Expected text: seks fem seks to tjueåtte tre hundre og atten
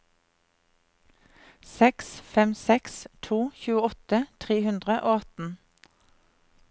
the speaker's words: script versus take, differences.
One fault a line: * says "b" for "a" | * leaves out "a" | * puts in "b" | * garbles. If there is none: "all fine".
all fine